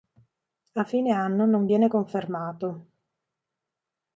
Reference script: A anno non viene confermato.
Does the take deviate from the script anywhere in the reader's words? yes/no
yes